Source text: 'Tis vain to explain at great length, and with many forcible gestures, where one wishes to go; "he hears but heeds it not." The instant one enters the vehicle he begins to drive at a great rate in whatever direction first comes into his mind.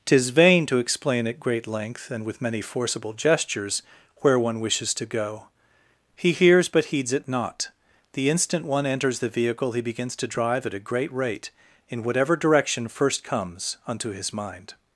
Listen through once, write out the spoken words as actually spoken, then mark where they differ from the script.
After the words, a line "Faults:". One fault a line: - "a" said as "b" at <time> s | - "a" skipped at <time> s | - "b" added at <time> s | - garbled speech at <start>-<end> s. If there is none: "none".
'Tis vain to explain at great length, and with many forcible gestures, where one wishes to go; "he hears but heeds it not." The instant one enters the vehicle he begins to drive at a great rate in whatever direction first comes unto his mind.
Faults:
- "into" said as "unto" at 13.8 s